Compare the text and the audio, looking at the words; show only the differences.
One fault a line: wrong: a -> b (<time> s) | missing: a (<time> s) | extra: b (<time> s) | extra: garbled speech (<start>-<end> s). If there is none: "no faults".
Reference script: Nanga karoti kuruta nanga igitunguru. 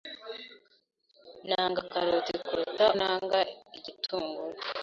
no faults